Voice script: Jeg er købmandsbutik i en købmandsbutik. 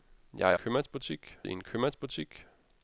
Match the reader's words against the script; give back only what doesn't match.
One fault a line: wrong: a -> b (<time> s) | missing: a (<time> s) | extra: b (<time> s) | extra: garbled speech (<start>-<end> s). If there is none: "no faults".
no faults